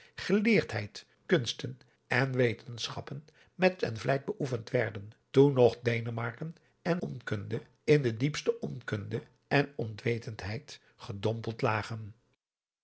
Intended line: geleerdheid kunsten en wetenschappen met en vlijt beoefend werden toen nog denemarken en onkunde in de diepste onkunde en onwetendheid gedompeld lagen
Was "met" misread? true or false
false